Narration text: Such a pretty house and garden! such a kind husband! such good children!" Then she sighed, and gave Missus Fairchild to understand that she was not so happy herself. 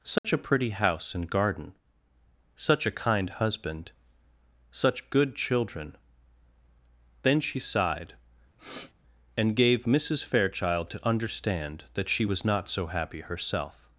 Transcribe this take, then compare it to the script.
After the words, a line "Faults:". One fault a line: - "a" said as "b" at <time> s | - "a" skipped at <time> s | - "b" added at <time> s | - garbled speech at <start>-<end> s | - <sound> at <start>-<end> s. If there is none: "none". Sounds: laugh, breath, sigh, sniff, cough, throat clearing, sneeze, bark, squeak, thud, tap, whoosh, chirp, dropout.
Such a pretty house and garden! such a kind husband! such good children!" Then she sighed, and gave Missus Fairchild to understand that she was not so happy herself.
Faults:
- dropout at 0.2-0.2 s
- sniff at 8.6-8.9 s